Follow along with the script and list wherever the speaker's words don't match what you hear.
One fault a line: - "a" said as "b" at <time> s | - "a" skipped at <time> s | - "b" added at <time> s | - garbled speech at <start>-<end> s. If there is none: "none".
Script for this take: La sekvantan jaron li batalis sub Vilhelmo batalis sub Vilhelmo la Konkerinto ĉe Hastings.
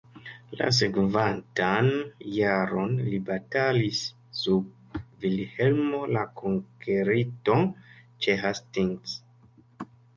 - "batalis sub Vilhelmo" skipped at 6.0 s